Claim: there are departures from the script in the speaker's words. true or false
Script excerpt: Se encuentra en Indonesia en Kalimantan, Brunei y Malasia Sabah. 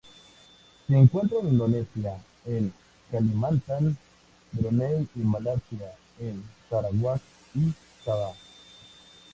true